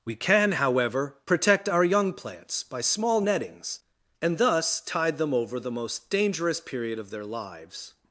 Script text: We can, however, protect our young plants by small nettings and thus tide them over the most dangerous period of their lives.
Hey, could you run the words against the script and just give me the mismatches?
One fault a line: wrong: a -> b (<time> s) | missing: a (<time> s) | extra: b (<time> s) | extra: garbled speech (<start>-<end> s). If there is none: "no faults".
no faults